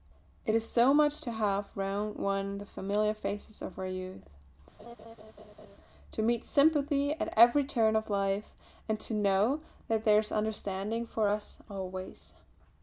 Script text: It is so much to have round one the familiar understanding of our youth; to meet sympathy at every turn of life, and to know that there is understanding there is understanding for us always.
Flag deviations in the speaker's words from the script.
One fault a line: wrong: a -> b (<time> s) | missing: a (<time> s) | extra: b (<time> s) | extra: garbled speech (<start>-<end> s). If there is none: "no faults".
wrong: understanding -> faces (3.2 s)
missing: there is understanding (11.1 s)